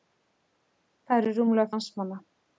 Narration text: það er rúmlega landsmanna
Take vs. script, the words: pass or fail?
pass